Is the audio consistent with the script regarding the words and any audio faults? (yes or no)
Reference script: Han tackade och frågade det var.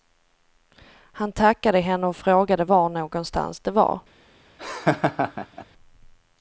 no